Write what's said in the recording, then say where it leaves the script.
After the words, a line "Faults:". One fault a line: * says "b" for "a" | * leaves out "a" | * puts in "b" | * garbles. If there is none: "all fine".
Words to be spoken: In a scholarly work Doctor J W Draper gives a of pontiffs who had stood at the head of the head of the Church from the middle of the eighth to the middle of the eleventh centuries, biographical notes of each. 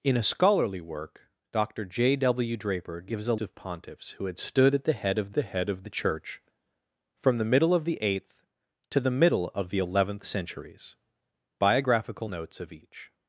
In a scholarly work Doctor J W Draper gives a of pontiffs who had stood at the head of the head of the Church from the middle of the eighth to the middle of the eleventh centuries, biographical notes of each.
Faults:
all fine